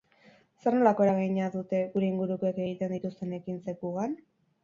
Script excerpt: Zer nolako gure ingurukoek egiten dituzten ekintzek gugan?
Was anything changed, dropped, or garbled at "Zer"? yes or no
no